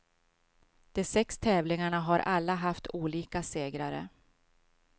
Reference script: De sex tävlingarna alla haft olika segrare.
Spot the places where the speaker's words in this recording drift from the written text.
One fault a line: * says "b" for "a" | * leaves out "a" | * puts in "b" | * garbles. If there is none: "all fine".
* puts in "har"